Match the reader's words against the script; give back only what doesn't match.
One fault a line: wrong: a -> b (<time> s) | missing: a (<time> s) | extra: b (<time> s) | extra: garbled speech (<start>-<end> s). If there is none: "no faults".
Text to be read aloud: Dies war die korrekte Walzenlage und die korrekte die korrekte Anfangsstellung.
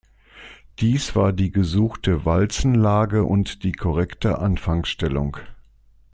wrong: korrekte -> gesuchte (1.5 s)
missing: die korrekte (4.4 s)